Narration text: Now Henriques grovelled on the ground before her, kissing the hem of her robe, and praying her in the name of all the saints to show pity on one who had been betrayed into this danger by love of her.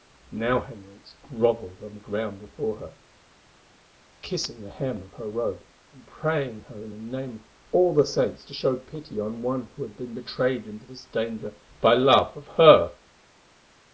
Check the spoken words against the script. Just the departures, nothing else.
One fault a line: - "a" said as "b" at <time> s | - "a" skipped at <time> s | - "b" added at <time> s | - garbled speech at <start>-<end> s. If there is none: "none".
none